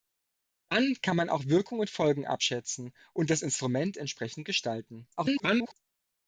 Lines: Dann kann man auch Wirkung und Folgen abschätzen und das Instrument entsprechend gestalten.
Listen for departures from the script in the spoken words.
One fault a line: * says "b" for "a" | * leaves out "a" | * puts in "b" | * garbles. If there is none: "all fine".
* garbles